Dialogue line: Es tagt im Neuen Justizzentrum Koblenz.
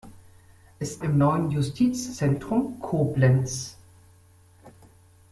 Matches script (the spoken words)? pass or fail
fail